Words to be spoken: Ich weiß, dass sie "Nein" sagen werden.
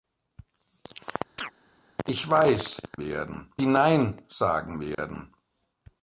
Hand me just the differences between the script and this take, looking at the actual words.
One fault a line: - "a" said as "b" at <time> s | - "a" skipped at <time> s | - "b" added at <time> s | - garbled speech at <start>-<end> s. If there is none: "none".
- "dass" said as "werden" at 3.0 s